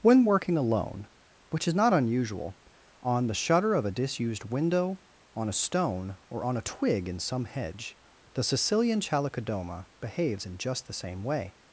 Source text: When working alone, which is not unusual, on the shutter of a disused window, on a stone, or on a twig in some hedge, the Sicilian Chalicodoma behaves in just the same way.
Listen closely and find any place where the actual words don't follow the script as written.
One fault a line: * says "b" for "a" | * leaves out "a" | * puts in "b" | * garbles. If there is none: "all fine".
all fine